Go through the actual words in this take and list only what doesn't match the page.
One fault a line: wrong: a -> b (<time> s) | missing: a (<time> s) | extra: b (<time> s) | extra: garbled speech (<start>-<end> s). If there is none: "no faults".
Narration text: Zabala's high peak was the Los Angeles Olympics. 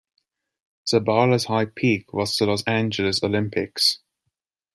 no faults